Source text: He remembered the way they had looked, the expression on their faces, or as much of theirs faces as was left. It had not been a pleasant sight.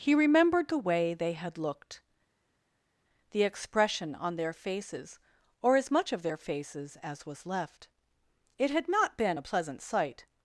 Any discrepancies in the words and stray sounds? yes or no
yes